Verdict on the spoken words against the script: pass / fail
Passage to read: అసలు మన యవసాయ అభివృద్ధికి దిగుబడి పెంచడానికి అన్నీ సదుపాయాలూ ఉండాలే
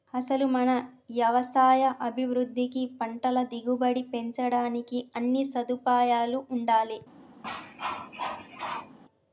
fail